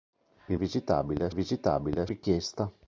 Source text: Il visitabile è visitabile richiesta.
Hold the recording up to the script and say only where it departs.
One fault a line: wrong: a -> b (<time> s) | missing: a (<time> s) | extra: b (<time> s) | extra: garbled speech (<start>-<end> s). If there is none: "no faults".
no faults